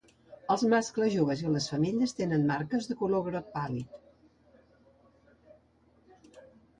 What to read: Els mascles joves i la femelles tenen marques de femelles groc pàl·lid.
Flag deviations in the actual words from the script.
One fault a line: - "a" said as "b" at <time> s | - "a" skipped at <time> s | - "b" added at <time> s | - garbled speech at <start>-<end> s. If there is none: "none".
- "la" said as "les" at 1.6 s
- "femelles" said as "color" at 3.0 s